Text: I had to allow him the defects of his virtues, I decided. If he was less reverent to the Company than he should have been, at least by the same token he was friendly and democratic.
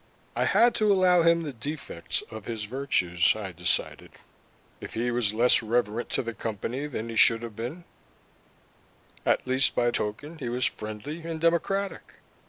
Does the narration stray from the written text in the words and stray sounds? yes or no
yes